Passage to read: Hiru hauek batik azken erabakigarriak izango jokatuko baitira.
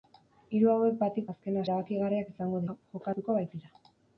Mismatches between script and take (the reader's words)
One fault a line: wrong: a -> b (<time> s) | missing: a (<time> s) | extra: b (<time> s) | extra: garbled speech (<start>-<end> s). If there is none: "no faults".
no faults